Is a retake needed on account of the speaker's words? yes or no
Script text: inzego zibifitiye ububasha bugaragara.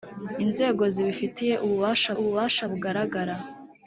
yes